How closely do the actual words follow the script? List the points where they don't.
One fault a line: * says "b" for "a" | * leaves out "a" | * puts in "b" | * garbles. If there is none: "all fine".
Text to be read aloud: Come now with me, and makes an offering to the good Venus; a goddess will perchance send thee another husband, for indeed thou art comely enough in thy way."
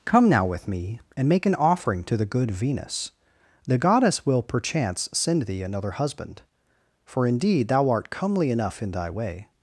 * says "make" for "makes"
* says "the" for "a"